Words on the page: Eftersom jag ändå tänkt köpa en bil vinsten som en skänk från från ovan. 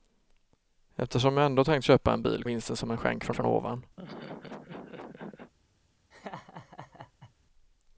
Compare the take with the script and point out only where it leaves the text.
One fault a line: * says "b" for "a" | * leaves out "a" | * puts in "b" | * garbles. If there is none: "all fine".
all fine